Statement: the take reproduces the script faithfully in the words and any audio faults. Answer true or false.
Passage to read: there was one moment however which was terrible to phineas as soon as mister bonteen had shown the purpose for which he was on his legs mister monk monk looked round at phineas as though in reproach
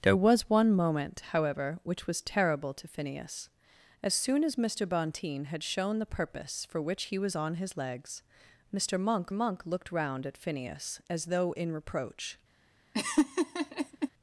false